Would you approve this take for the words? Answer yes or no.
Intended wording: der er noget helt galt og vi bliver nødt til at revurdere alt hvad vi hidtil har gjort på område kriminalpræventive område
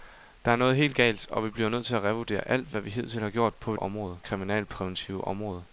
yes